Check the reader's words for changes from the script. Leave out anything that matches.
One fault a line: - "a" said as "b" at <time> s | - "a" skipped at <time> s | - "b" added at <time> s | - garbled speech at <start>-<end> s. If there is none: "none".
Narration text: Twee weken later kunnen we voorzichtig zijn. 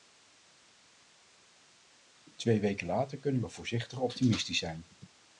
- "optimistisch" added at 4.0 s